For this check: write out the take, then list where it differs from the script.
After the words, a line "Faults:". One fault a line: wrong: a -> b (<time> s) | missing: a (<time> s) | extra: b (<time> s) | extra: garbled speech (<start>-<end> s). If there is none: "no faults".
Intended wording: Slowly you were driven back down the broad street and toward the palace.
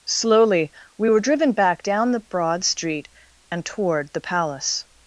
Slowly we were driven back down the broad street and toward the palace.
Faults:
wrong: you -> we (1.0 s)